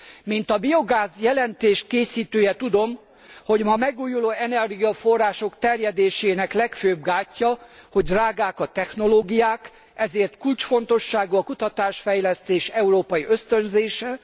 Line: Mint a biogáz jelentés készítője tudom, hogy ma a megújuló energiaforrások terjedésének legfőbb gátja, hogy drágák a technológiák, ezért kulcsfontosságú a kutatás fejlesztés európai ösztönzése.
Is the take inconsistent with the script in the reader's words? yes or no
no